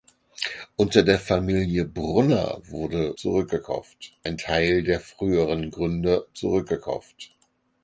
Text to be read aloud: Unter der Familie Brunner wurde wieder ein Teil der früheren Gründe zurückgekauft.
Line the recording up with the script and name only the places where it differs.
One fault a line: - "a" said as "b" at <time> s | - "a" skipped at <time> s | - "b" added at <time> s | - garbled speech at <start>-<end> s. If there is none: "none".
- "wieder" said as "zurückgekauft" at 3.1 s